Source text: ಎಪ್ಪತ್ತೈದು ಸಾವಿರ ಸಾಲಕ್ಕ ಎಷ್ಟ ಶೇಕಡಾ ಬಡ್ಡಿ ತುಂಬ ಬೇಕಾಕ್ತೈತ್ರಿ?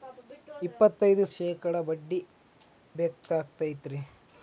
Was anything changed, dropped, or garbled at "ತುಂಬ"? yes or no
yes